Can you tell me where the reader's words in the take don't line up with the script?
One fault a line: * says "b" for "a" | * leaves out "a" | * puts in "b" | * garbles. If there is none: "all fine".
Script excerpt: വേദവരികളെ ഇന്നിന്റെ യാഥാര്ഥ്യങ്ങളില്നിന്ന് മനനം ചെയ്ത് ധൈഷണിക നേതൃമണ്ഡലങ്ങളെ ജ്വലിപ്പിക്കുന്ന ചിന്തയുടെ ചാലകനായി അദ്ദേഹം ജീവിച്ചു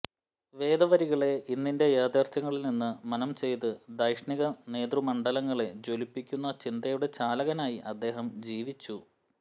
all fine